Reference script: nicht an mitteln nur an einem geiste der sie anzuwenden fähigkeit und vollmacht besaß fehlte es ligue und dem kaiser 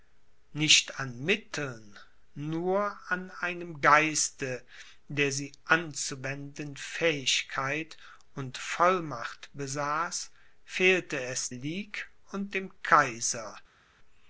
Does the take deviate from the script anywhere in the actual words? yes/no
no